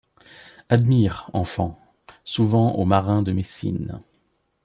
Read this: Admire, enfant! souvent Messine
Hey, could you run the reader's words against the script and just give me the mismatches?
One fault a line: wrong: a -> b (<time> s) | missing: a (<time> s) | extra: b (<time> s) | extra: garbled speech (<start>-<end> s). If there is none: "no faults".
extra: aux marins de (2.8 s)